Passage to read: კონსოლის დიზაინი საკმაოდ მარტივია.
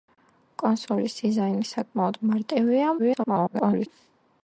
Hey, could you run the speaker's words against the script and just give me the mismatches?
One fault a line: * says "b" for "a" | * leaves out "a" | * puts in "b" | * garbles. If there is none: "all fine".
* garbles